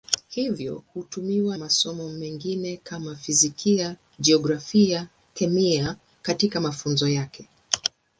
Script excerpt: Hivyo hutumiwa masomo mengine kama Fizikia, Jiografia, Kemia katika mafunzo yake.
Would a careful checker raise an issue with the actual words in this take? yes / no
no